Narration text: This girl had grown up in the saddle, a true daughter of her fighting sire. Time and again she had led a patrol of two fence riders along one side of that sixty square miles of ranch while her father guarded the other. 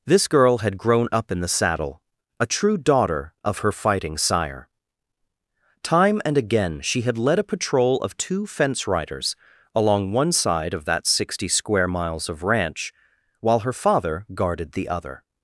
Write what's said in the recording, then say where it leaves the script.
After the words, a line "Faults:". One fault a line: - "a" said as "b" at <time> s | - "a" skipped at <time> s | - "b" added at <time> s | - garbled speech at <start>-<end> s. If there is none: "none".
This girl had grown up in the saddle, a true daughter of her fighting sire. Time and again she had led a patrol of two fence riders along one side of that sixty square miles of ranch while her father guarded the other.
Faults:
none